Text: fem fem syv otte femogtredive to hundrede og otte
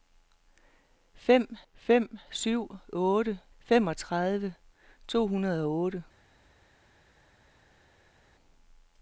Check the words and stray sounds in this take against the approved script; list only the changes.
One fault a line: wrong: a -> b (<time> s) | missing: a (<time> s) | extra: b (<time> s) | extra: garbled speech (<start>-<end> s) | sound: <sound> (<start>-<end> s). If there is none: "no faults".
no faults